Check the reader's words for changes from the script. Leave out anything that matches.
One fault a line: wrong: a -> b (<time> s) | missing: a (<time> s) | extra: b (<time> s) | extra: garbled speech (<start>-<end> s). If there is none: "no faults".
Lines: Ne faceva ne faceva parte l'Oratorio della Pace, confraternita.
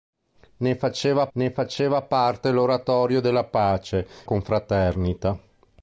no faults